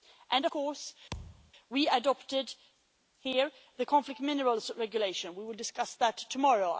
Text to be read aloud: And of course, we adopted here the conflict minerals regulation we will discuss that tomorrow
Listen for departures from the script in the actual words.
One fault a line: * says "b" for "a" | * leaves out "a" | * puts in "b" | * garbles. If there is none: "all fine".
* leaves out "of"